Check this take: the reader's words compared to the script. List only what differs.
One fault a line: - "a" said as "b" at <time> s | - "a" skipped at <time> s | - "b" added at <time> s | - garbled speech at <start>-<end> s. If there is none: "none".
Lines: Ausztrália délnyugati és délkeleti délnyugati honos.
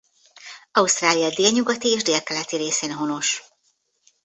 - "délnyugati" said as "részén" at 2.6 s